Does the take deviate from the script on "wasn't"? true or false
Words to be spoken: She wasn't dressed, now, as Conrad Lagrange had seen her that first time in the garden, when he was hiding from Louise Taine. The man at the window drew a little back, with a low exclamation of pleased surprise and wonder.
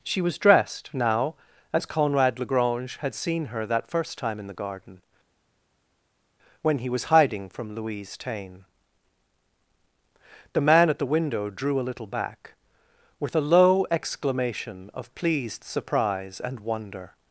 true